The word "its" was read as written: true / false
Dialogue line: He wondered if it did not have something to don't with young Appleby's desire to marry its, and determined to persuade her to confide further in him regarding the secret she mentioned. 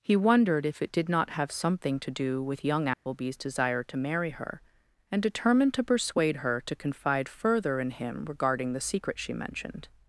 false